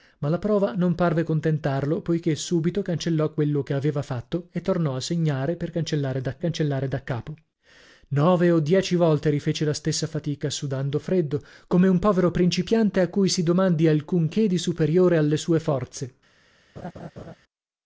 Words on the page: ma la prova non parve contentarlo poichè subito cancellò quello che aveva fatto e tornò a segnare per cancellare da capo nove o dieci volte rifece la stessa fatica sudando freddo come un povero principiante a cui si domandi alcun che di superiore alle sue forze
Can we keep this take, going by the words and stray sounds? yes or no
no